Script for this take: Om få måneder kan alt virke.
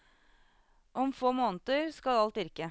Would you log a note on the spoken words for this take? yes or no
yes